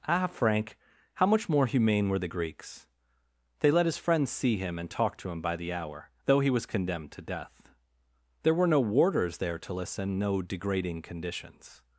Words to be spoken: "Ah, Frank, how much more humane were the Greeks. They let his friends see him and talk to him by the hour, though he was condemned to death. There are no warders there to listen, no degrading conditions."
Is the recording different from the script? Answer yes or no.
yes